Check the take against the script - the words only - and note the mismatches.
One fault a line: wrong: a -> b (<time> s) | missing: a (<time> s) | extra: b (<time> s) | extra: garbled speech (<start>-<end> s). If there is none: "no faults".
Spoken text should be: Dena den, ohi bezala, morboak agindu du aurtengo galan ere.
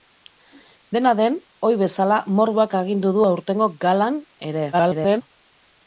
extra: garbled speech (4.7-5.2 s)